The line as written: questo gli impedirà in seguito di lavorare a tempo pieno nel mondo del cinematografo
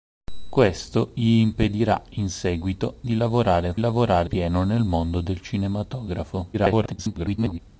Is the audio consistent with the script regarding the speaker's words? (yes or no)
no